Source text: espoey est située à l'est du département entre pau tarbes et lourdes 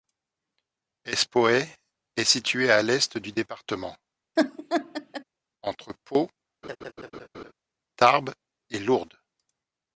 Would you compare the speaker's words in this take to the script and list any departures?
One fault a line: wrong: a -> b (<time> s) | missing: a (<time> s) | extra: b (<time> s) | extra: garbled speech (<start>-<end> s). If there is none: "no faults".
no faults